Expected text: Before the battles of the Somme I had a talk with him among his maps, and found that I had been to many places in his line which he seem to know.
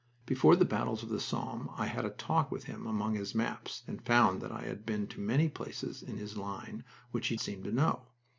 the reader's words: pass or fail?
pass